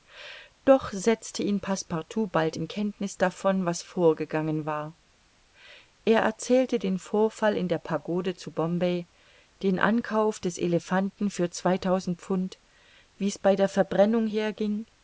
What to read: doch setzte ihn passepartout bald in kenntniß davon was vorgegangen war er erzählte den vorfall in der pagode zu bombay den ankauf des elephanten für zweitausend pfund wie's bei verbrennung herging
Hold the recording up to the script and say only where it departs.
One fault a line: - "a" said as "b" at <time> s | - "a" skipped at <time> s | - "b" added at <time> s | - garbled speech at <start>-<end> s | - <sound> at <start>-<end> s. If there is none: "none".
- "der" added at 13.5 s